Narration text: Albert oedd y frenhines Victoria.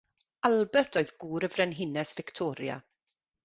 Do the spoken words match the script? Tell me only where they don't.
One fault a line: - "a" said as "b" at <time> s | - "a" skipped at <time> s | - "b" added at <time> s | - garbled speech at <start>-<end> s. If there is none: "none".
- "gŵr" added at 1.2 s